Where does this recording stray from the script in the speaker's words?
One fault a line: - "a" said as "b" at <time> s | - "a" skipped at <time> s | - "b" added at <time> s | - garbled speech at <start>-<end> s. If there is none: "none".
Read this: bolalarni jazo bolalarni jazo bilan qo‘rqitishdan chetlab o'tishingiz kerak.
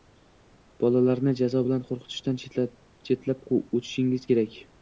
- "bolalarni jazo" skipped at 1.6 s